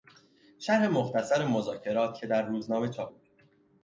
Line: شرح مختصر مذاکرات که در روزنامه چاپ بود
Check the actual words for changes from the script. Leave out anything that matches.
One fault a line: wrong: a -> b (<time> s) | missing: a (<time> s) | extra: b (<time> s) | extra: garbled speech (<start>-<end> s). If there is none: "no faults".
no faults